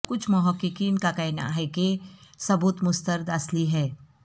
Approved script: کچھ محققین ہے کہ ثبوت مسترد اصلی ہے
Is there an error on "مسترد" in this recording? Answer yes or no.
no